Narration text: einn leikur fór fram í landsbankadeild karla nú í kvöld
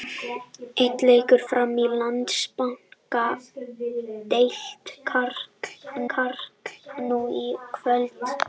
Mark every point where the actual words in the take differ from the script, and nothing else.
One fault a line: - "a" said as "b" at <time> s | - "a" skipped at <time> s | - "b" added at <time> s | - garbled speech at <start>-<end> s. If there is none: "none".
- "fór" skipped at 1.4 s
- "karla" added at 6.2 s